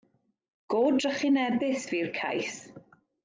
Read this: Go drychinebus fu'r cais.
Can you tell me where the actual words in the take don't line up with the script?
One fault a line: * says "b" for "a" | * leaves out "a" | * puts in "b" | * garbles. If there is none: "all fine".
all fine